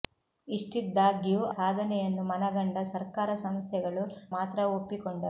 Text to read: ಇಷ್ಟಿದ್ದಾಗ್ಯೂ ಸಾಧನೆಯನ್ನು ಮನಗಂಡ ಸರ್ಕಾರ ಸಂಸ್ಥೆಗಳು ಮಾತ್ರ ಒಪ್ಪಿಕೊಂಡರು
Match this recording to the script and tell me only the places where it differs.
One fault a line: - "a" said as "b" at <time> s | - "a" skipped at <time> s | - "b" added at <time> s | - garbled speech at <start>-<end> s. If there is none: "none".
none